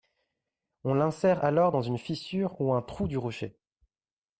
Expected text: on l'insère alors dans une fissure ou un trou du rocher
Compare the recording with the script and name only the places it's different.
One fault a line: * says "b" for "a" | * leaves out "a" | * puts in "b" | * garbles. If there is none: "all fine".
all fine